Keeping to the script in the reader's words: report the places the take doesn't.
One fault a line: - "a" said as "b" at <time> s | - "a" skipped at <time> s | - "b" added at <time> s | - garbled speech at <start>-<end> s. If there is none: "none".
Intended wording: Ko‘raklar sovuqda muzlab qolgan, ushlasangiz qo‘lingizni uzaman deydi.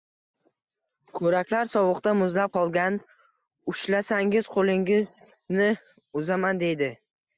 none